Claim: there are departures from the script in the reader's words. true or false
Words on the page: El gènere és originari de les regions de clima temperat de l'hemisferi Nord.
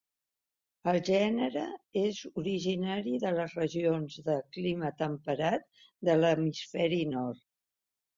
false